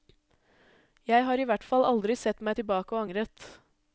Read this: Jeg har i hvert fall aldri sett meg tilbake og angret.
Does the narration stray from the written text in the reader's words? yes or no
no